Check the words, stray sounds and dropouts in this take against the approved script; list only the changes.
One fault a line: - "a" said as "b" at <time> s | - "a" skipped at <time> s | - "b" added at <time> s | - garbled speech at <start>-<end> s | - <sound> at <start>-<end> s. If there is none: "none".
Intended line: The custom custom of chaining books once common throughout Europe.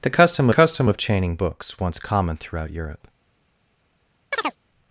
- chirp at 4.3-4.6 s